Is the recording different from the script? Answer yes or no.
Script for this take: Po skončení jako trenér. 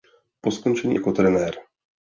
no